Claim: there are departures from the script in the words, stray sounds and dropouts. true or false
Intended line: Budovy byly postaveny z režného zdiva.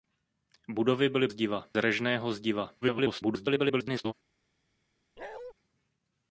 true